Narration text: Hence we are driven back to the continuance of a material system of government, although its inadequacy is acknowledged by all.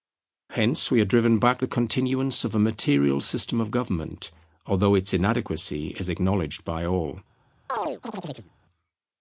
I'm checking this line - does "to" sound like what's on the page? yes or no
no